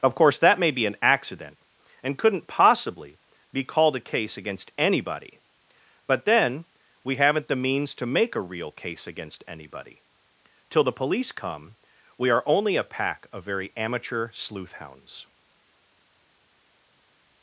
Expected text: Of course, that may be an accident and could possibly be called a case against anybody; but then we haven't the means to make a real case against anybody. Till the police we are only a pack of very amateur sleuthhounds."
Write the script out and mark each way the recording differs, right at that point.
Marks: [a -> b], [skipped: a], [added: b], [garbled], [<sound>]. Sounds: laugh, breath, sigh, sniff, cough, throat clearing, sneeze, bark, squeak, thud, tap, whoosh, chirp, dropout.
Of course, that may be an accident and [could -> couldn't] possibly be called a case against anybody; but then we haven't the means to make a real case against anybody. Till the police [added: come] we are only a pack of very amateur sleuthhounds."